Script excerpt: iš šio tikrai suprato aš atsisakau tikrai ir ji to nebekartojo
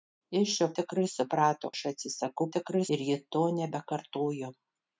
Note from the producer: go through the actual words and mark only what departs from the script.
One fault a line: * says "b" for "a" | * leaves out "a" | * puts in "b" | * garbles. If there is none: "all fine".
all fine